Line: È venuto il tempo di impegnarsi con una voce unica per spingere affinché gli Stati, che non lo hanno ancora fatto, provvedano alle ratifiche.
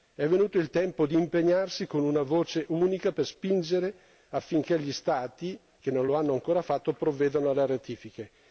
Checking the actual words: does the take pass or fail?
pass